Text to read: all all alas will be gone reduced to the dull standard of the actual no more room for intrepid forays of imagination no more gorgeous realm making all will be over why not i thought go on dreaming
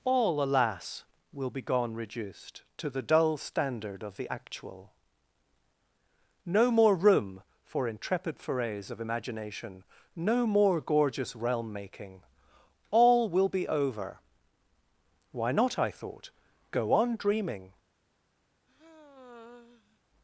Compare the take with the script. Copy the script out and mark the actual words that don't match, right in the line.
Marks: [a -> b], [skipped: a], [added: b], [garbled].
all [skipped: all] alas will be gone reduced to the dull standard of the actual no more room for intrepid forays of imagination no more gorgeous realm making all will be over why not i thought go on dreaming